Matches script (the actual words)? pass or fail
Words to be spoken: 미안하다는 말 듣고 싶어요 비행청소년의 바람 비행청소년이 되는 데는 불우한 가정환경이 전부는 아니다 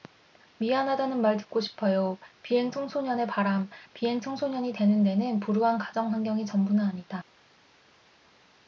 pass